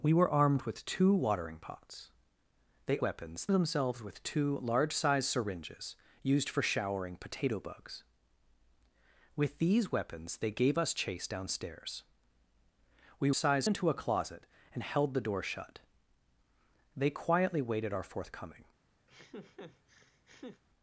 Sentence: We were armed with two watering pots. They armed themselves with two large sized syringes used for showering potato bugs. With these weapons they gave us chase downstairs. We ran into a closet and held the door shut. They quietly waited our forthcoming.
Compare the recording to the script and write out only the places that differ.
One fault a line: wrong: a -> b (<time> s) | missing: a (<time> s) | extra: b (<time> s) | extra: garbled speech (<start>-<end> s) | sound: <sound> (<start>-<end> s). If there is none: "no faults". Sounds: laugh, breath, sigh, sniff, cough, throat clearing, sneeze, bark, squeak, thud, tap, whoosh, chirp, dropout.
wrong: armed -> weapons (3.0 s)
wrong: ran -> sized (13.3 s)
sound: laugh (19.1-20.6 s)